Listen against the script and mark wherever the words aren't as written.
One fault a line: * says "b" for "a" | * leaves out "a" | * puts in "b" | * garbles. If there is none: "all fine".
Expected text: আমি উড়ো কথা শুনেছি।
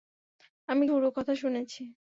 all fine